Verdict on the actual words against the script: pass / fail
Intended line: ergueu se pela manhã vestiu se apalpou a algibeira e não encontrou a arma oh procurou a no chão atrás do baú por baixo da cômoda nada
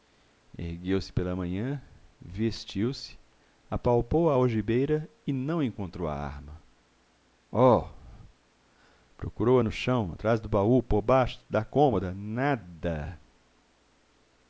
pass